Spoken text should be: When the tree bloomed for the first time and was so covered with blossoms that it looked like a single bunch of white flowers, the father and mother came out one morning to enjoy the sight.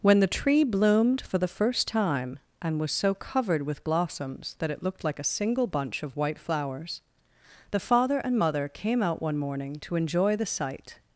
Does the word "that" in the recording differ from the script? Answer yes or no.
no